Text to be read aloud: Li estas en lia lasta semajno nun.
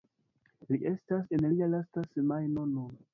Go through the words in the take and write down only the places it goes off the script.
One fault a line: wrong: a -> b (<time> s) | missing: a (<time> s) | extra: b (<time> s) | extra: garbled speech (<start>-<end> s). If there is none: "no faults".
no faults